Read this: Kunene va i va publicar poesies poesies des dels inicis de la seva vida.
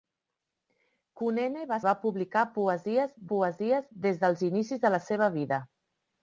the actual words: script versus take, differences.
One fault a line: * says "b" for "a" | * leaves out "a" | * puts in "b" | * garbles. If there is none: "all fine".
all fine